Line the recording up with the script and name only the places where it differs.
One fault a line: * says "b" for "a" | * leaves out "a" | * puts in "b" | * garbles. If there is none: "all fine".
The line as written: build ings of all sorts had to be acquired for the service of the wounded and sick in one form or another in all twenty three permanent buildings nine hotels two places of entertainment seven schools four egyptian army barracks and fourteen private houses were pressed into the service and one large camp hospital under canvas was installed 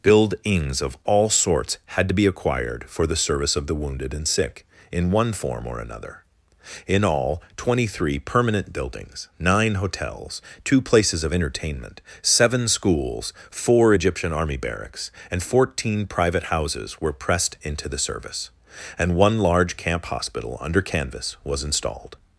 all fine